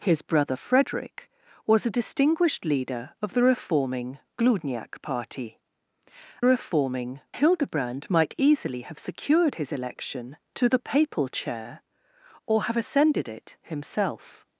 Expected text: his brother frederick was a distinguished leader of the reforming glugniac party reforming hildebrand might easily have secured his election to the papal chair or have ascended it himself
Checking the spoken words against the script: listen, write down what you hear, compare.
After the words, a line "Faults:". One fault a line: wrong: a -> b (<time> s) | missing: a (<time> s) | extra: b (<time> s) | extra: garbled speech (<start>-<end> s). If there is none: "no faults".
his brother frederick was a distinguished leader of the reforming glugniac party reforming hildebrand might easily have secured his election to the papal chair or have ascended it himself
Faults:
no faults